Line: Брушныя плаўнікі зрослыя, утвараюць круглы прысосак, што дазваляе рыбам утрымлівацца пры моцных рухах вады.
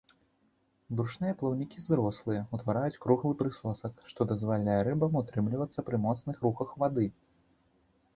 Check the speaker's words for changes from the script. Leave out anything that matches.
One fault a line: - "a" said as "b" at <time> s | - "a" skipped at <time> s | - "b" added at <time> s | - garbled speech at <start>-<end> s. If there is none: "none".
none